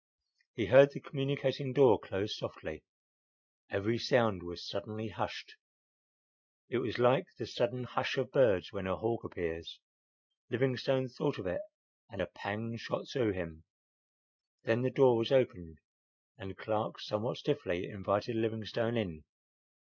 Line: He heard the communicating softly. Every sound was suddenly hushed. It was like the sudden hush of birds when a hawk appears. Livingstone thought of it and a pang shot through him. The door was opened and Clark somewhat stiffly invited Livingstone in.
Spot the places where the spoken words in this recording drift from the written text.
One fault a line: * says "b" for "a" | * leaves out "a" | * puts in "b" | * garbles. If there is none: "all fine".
* puts in "door close"
* puts in "Then"